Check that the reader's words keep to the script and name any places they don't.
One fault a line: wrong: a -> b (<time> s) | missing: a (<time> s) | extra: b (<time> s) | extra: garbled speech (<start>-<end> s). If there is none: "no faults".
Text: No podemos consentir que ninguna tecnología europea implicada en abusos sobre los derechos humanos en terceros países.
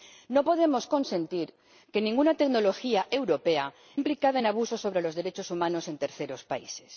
no faults